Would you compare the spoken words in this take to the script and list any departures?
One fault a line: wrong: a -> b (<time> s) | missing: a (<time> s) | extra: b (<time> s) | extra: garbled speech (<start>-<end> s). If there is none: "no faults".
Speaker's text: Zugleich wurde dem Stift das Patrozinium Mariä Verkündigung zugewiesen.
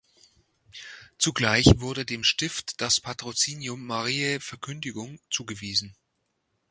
no faults